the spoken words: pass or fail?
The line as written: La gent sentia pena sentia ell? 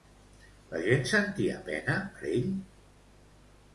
fail